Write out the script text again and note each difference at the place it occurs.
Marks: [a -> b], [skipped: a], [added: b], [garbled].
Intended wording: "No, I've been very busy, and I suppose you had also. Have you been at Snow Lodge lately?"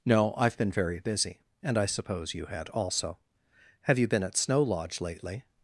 "No, I've been very busy, and I suppose you had also. Have you been at Snow Lodge lately?"